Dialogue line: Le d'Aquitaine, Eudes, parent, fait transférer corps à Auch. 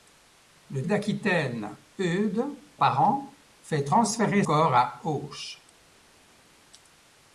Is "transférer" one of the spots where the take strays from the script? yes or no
no